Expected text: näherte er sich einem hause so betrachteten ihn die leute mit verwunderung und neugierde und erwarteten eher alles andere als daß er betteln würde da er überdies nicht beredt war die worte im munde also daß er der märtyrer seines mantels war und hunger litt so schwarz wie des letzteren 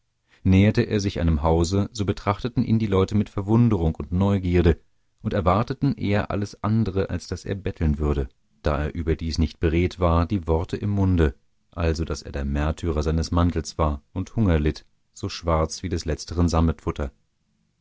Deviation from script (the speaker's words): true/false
false